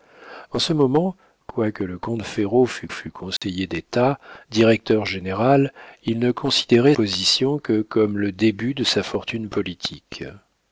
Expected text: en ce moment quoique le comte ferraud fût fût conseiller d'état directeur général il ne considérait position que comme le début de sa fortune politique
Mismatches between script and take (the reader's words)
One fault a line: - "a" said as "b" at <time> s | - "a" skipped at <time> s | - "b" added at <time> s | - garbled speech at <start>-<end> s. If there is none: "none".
none